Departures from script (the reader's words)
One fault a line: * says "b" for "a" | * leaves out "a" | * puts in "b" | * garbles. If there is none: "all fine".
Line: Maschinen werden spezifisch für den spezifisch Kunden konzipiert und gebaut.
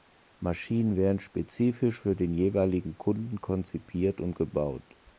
* says "jeweiligen" for "spezifisch"